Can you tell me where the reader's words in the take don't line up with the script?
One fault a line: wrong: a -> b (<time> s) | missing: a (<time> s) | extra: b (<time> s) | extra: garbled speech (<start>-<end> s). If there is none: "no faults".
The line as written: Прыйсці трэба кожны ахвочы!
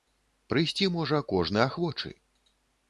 wrong: трэба -> можа (0.9 s)